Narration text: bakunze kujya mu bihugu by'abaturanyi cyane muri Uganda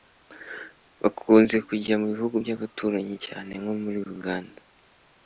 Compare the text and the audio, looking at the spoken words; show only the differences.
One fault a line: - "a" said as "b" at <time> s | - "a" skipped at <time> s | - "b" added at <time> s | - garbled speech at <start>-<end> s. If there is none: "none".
- "nko" added at 3.6 s